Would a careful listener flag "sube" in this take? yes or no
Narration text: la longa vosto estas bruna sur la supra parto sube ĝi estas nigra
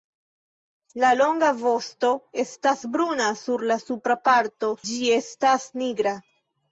yes